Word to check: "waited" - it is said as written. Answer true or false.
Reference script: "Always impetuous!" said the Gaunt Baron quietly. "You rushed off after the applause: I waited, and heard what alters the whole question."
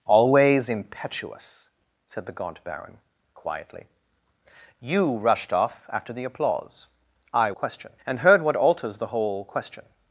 false